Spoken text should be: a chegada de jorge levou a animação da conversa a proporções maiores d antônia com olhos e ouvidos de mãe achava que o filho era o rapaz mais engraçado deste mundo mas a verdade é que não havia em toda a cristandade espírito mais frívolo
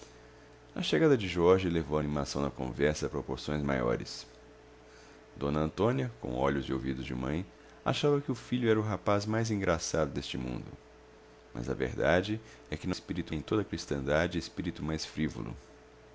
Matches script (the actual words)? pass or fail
fail